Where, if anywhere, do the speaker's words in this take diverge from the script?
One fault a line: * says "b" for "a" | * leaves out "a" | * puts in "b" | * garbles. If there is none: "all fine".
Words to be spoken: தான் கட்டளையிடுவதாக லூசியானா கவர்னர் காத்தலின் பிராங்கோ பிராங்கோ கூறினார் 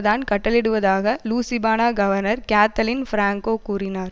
* leaves out "பிராங்கோ"